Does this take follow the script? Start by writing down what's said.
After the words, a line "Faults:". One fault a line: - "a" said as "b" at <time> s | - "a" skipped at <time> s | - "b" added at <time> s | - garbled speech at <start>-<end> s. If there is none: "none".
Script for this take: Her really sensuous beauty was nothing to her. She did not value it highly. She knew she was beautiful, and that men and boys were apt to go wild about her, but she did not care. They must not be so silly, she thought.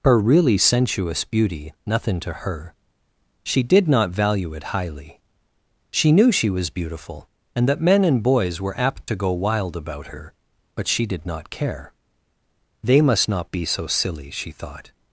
Her really sensuous beauty nothing to her. She did not value it highly. She knew she was beautiful, and that men and boys were apt to go wild about her, but she did not care. They must not be so silly, she thought.
Faults:
- "was" skipped at 1.7 s